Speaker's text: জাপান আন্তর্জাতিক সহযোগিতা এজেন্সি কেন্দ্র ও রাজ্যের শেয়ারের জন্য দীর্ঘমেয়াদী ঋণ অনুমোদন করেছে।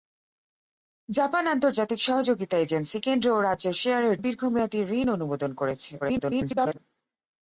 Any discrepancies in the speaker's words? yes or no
yes